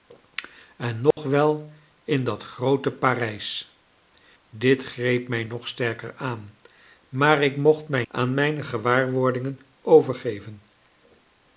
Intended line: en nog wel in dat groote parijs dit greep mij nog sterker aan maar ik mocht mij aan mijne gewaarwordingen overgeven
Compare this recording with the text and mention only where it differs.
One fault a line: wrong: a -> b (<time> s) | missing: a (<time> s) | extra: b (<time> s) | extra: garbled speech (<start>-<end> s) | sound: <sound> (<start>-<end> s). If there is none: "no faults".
sound: dropout (1.1-1.2 s)